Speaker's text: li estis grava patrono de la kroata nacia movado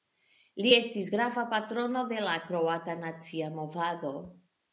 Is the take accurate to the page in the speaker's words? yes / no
yes